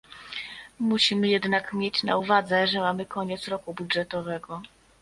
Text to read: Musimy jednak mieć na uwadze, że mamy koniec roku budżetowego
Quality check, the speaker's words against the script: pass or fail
pass